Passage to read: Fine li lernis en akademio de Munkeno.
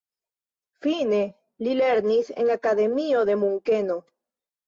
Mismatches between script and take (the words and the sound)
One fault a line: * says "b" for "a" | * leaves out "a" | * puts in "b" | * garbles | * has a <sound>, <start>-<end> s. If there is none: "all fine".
all fine